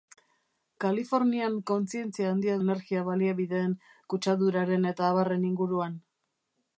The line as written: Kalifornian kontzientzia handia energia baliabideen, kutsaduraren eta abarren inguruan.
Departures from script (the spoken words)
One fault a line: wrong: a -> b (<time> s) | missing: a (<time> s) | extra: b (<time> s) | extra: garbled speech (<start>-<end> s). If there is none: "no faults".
no faults